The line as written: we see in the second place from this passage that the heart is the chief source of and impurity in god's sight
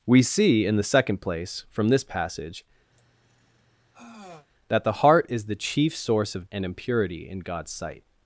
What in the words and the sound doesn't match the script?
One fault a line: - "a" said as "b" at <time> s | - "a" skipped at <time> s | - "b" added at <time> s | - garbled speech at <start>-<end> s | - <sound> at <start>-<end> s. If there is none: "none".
- sigh at 2.9-4.5 s